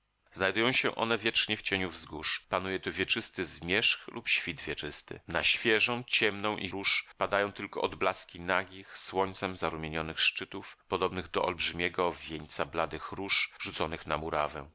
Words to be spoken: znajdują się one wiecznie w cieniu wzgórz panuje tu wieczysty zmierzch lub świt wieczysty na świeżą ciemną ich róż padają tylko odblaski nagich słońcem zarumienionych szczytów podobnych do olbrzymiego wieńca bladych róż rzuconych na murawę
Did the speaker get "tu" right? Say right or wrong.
right